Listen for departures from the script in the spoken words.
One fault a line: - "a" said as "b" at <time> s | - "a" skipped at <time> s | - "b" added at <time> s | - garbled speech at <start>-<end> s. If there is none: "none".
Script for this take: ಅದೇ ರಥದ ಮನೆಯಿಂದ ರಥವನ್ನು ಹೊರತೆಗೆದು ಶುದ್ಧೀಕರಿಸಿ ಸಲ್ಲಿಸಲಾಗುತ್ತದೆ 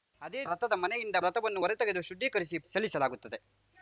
none